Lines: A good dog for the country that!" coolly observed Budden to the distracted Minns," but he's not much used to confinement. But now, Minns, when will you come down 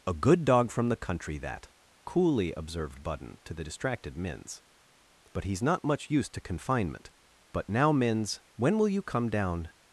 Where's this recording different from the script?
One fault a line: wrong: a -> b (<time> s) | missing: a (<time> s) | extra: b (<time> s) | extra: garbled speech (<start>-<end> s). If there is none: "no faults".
wrong: for -> from (0.7 s)